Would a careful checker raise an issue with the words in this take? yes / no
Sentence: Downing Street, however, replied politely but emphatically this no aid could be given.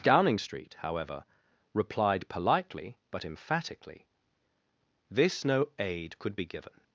no